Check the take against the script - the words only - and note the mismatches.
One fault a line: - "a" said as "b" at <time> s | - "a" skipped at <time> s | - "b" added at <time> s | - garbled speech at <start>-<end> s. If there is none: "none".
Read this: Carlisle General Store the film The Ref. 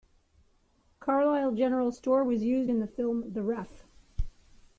- "was used in" added at 2.2 s